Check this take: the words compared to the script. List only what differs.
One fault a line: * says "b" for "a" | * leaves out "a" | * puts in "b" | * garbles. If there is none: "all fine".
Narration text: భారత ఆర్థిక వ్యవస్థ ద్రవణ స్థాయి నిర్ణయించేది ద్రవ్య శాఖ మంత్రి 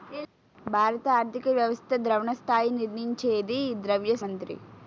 * leaves out "శాఖ"